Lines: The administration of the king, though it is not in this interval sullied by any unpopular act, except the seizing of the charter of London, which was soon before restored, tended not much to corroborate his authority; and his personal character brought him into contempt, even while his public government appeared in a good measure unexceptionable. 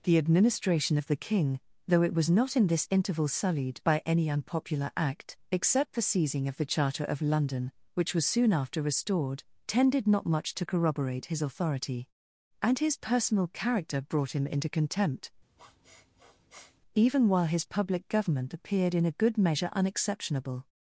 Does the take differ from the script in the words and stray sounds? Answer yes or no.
yes